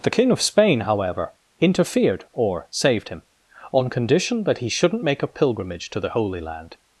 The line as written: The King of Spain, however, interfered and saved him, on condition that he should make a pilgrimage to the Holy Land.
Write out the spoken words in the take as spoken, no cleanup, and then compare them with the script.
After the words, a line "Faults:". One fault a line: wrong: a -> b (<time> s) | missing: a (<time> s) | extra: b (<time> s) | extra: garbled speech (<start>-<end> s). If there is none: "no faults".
The King of Spain, however, interfered or saved him, on condition that he shouldn't make a pilgrimage to the Holy Land.
Faults:
wrong: and -> or (2.3 s)
wrong: should -> shouldn't (4.7 s)